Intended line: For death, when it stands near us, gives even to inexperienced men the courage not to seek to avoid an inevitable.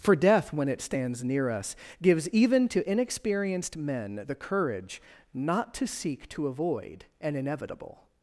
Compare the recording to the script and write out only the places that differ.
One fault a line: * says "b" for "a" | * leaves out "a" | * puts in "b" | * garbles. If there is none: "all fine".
all fine